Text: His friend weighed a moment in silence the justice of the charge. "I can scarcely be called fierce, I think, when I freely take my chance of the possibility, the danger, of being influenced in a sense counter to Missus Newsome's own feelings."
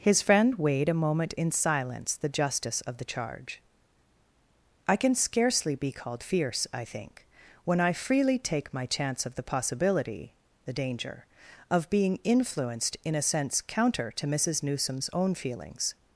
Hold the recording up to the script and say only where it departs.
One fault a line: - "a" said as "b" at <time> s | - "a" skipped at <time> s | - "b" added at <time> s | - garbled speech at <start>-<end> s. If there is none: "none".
none